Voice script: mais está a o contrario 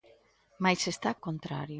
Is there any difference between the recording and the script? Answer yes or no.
no